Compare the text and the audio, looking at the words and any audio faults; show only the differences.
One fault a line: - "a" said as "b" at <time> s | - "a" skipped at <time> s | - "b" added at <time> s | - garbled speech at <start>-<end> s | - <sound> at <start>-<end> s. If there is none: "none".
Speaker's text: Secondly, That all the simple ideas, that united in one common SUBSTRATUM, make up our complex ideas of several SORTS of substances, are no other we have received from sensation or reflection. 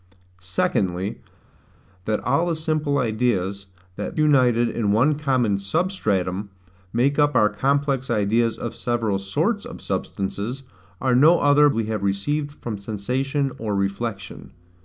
none